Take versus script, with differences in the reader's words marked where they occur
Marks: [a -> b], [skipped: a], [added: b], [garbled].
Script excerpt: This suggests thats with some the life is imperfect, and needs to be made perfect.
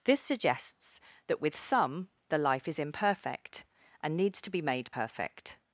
This suggests [thats -> that] with some the life is imperfect, and needs to be made perfect.